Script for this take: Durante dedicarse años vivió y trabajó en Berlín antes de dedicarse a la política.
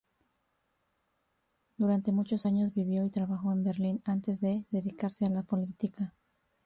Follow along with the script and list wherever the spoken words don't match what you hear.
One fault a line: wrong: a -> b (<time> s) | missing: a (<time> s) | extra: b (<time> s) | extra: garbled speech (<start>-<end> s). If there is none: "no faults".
wrong: dedicarse -> muchos (2.1 s)